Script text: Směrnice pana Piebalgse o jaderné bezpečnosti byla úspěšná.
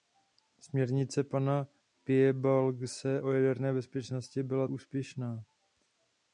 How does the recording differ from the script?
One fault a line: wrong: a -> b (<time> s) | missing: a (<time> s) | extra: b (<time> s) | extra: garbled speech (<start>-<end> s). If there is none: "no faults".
no faults